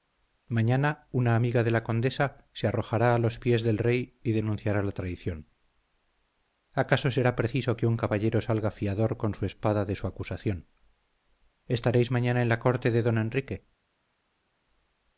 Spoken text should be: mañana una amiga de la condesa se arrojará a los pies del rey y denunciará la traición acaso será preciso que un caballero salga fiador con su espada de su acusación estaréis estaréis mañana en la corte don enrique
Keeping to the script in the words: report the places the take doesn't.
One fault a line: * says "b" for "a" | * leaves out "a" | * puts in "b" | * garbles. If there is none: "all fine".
* leaves out "estaréis"
* puts in "de"